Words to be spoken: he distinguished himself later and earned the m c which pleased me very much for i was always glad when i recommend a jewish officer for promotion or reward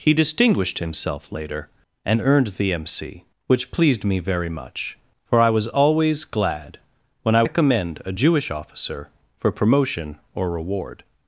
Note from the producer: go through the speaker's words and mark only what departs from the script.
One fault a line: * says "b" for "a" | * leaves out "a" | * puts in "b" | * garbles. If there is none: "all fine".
all fine